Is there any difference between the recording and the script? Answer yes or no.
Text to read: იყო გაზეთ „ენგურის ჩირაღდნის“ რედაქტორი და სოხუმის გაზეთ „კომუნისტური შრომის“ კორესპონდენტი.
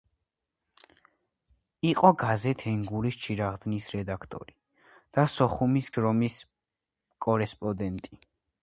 yes